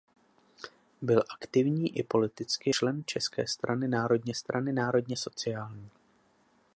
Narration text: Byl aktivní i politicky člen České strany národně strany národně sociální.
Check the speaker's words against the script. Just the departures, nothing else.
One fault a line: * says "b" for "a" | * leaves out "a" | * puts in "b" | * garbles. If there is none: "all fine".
all fine